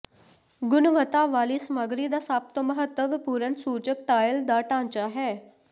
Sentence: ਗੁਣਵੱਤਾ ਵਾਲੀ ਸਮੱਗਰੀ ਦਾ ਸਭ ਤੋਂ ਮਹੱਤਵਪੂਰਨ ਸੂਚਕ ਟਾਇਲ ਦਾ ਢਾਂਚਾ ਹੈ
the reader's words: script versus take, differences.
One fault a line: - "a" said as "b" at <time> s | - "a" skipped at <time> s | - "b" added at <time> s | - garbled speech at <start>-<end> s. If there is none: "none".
none